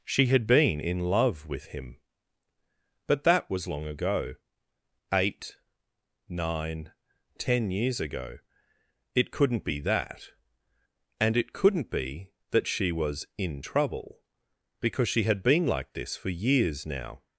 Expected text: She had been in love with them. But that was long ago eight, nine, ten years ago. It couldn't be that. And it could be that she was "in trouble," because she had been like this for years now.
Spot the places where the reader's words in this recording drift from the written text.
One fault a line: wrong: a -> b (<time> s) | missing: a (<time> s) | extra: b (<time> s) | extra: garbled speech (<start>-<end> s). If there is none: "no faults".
wrong: them -> him (1.7 s)
wrong: could -> couldn't (11.5 s)